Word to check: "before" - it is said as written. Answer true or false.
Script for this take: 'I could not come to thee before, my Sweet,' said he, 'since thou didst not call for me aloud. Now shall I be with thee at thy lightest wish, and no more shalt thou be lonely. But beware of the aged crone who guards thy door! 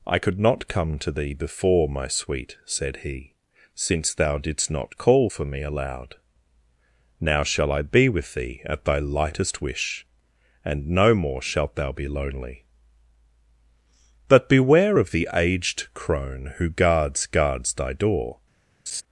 true